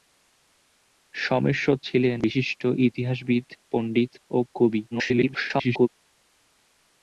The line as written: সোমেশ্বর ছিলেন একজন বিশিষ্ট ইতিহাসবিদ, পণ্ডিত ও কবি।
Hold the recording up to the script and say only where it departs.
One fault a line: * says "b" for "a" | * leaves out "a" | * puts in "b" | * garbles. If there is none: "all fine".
* leaves out "একজন"
* garbles